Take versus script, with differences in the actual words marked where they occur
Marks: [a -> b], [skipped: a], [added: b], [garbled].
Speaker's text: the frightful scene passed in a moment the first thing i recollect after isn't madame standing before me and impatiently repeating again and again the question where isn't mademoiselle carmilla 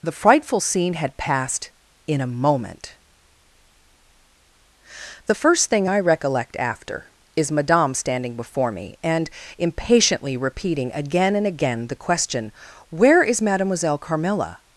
the frightful scene [added: had] passed in a moment the first thing i recollect after [isn't -> is] madame standing before me and impatiently repeating again and again the question where [isn't -> is] mademoiselle carmilla